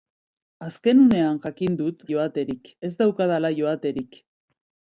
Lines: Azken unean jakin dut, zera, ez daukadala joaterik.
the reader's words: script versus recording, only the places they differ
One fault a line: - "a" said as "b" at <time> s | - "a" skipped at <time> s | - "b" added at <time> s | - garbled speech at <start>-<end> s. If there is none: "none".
- "zera" said as "joaterik" at 2.1 s